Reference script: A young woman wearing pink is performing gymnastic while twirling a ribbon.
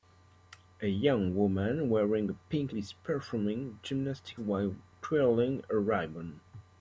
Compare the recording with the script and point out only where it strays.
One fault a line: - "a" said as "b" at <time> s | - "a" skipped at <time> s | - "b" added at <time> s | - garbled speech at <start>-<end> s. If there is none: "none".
none